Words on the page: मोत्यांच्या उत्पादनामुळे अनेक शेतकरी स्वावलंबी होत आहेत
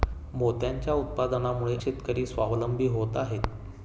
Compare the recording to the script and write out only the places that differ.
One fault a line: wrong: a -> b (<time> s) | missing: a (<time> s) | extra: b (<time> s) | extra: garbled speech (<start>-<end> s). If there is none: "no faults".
missing: अनेक (1.8 s)